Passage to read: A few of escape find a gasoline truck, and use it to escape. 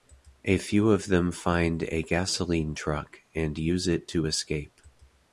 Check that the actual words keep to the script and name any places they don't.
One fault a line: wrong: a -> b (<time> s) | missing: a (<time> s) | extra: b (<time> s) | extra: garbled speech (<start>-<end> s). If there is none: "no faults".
wrong: escape -> them (1.1 s)